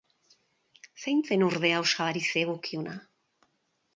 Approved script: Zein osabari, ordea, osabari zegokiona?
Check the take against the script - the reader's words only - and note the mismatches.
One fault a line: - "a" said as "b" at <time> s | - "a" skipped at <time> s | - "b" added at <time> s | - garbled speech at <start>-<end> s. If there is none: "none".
- "osabari" said as "zen" at 1.3 s